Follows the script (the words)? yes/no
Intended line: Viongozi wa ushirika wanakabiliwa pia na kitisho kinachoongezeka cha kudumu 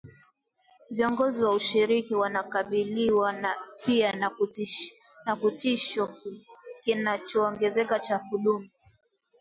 yes